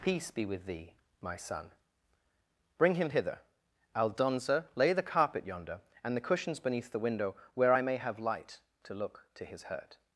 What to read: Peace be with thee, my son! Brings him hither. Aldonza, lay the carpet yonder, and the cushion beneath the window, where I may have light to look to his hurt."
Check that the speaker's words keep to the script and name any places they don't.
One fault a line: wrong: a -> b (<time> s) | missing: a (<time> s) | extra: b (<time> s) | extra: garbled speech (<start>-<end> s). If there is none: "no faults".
wrong: Brings -> Bring (2.8 s)
wrong: cushion -> cushions (6.2 s)